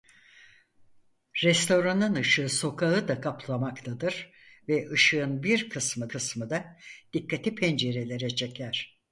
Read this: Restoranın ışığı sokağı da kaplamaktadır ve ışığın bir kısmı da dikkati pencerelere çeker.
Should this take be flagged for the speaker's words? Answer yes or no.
yes